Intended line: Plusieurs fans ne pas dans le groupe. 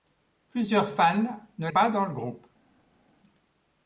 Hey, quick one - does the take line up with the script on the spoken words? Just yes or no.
yes